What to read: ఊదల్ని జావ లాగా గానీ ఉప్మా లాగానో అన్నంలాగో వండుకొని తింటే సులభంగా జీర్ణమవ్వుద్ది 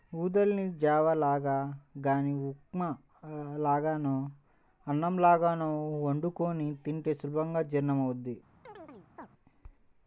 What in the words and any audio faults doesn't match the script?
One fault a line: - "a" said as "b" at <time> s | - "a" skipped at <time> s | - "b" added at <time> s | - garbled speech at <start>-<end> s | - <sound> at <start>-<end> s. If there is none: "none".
- chirp at 8.7-9.3 s